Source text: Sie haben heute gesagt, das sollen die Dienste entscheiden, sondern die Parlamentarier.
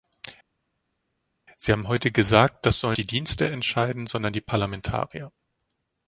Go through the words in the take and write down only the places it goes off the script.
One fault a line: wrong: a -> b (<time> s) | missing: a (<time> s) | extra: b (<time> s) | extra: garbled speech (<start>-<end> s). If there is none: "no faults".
no faults